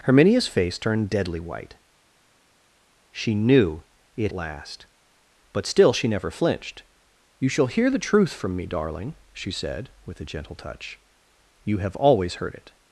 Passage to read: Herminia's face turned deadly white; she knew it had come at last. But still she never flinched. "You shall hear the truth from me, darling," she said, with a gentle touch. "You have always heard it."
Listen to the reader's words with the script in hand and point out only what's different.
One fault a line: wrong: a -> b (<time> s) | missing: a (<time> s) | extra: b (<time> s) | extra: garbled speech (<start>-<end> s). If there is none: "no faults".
missing: had come at (4.3 s)